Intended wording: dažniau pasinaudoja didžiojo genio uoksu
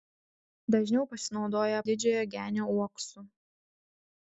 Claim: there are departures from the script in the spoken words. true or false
false